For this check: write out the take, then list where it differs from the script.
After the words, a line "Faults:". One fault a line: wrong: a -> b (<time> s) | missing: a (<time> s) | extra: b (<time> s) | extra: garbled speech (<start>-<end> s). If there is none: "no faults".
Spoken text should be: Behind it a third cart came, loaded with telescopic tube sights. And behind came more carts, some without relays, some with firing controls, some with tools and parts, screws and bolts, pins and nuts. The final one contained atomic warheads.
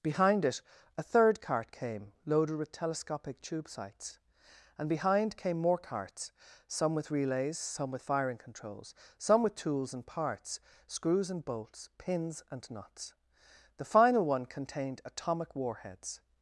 Behind it a third cart came, loaded with telescopic tube sights. And behind came more carts, some with relays, some with firing controls, some with tools and parts, screws and bolts, pins and nuts. The final one contained atomic warheads.
Faults:
wrong: without -> with (7.0 s)